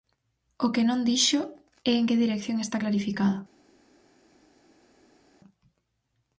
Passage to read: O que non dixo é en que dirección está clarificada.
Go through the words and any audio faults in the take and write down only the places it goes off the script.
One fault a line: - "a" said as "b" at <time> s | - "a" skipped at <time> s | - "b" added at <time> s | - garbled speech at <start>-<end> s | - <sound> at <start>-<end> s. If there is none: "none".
none